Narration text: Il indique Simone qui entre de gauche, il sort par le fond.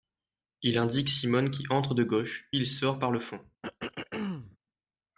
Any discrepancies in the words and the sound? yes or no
yes